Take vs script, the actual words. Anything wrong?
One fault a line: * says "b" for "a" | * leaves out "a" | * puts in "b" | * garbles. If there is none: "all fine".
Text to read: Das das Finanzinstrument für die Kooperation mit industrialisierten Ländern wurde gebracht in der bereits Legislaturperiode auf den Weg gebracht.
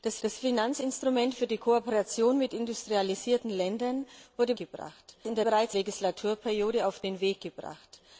all fine